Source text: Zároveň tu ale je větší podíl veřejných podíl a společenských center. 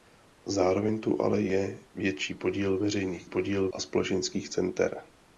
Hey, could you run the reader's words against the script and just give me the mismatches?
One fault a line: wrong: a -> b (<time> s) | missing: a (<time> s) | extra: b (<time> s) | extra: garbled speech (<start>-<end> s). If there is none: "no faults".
no faults